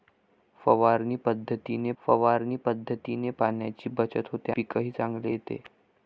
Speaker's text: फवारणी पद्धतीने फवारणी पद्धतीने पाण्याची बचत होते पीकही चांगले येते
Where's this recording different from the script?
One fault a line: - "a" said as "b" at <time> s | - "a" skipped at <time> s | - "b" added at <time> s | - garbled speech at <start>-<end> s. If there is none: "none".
none